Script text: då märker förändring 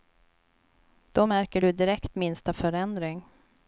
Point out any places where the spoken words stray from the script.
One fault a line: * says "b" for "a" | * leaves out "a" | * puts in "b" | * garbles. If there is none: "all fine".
* puts in "du direkt minsta"